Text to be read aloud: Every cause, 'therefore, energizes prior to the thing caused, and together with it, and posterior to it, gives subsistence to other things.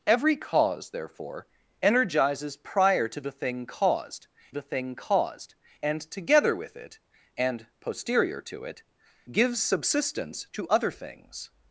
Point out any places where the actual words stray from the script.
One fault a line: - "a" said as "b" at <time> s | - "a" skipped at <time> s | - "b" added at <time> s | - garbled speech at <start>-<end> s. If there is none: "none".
- "the thing caused" added at 4.5 s